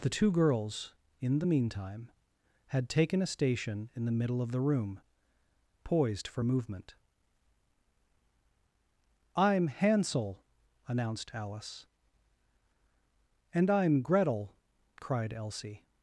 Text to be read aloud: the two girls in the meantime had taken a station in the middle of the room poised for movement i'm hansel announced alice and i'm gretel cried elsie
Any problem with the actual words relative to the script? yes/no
no